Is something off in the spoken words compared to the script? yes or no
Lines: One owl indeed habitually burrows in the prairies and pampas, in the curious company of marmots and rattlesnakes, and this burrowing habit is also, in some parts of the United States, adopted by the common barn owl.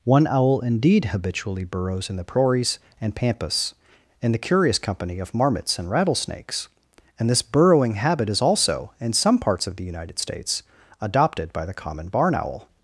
no